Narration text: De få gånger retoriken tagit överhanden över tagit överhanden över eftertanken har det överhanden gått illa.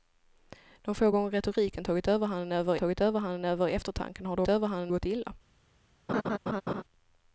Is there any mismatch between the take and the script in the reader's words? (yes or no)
no